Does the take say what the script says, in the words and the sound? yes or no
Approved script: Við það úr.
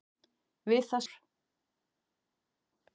yes